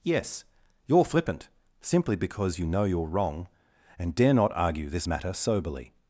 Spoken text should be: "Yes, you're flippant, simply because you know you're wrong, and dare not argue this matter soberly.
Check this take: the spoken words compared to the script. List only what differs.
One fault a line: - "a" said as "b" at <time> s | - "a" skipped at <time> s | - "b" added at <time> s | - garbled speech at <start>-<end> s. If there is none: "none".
none